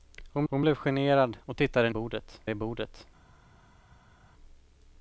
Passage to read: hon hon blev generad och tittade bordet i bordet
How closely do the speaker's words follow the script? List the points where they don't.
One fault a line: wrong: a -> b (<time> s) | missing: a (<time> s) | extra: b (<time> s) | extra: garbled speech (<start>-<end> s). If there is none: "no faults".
no faults